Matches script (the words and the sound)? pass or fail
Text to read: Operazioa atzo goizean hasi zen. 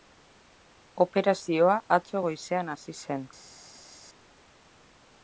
pass